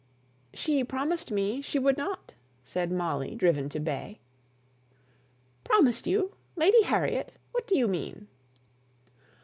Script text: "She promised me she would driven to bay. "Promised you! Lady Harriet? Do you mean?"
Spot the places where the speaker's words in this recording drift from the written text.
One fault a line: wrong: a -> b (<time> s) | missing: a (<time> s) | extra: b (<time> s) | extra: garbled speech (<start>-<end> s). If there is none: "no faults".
extra: not said Molly (1.9 s)
extra: What (7.5 s)